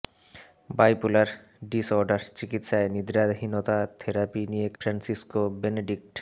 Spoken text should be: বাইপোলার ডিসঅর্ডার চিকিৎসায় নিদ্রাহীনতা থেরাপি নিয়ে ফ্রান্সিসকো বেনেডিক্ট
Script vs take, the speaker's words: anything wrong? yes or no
no